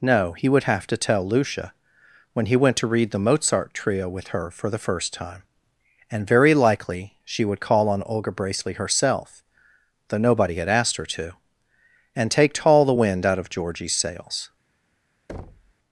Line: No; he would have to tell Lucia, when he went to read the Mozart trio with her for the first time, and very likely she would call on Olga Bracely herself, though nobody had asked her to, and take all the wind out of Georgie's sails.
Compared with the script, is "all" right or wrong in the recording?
wrong